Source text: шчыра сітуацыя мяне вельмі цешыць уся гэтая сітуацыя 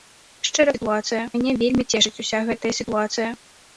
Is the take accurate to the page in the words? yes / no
yes